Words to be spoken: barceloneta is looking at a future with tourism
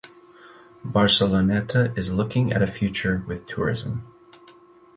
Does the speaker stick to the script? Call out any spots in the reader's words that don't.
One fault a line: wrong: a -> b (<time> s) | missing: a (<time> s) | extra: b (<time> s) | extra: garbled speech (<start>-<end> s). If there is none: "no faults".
no faults